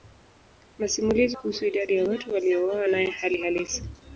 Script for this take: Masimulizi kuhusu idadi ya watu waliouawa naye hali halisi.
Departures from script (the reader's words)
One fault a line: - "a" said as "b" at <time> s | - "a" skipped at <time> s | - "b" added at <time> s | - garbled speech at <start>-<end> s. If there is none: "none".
none